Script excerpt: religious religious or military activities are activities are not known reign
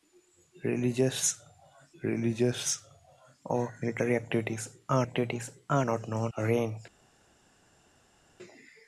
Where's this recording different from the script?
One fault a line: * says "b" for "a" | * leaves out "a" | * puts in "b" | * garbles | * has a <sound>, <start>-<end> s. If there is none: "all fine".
all fine